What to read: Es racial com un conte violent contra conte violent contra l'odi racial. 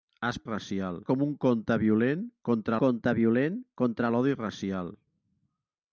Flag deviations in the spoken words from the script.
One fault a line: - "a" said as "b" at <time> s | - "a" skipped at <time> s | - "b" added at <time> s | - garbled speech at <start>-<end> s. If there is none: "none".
none